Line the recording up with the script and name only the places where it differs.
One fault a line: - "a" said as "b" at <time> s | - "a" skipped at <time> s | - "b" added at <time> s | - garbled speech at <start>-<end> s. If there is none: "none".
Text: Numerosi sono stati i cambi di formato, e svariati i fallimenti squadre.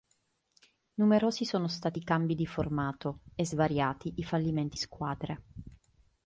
none